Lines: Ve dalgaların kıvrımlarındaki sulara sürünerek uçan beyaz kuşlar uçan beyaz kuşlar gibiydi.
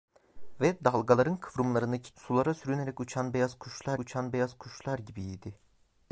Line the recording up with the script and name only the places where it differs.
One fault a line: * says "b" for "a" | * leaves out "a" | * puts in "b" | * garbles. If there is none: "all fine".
all fine